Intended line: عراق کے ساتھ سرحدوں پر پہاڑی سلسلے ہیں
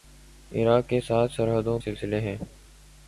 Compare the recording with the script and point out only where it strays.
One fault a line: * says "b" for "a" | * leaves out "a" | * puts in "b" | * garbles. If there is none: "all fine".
* leaves out "پر پہاڑی"